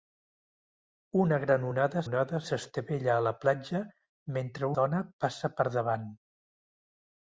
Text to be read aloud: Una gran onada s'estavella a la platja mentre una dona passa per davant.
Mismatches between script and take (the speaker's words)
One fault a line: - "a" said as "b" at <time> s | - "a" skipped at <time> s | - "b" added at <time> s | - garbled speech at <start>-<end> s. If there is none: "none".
- "onada" added at 2.0 s
- "una" skipped at 4.7 s